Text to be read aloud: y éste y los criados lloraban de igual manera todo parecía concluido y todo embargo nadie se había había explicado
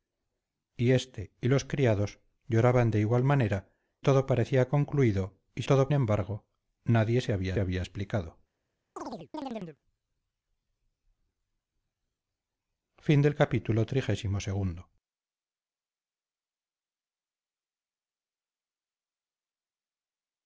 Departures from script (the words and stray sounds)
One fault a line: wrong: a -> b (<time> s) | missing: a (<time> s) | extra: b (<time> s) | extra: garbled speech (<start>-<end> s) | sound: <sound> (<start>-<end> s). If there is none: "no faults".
sound: chirp (9.0-9.8 s)